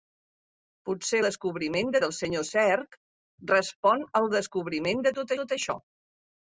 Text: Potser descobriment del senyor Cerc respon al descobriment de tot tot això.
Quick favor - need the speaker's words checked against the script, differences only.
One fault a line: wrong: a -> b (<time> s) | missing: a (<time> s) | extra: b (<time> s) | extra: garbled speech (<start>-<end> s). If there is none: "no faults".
no faults